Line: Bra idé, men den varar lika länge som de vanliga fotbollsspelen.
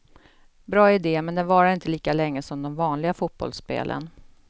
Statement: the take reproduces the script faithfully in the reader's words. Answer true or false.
false